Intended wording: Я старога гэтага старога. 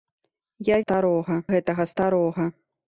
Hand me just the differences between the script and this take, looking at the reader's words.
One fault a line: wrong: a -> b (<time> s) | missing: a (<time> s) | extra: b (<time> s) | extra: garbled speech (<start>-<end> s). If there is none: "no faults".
no faults